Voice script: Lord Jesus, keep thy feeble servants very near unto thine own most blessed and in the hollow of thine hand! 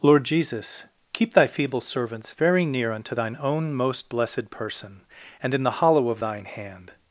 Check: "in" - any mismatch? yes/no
no